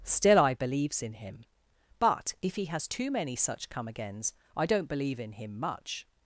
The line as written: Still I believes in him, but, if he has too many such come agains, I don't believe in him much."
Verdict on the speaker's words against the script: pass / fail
pass